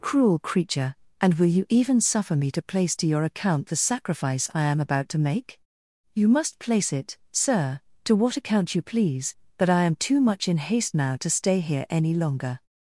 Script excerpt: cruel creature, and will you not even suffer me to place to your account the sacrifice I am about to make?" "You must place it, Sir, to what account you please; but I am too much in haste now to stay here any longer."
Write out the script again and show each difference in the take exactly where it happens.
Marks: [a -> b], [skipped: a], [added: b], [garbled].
cruel creature, and will you [skipped: not] even suffer me to place to your account the sacrifice I am about to make?" "You must place it, Sir, to what account you please; but I am too much in haste now to stay here any longer."